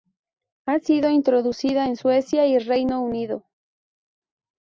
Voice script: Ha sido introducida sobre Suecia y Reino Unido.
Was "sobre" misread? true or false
true